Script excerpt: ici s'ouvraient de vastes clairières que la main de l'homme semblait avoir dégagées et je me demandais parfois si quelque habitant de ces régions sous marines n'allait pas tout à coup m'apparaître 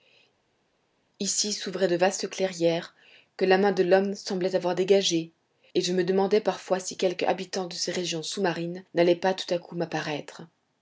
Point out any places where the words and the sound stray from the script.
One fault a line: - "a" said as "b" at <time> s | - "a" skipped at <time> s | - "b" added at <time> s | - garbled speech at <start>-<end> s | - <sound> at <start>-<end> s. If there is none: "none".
none